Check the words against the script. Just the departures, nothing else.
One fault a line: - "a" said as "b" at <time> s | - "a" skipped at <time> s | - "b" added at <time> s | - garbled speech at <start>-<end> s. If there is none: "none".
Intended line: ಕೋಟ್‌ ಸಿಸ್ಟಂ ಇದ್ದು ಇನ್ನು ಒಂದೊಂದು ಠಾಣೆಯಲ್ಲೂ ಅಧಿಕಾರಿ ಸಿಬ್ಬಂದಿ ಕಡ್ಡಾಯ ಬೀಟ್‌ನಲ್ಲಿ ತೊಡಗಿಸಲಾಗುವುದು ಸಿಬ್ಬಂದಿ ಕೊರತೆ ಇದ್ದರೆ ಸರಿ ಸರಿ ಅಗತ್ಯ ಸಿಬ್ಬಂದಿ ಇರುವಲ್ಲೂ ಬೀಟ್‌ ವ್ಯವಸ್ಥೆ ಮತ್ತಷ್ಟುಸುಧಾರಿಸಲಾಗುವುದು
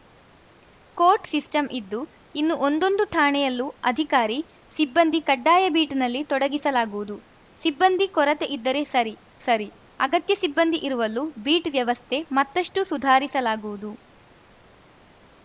none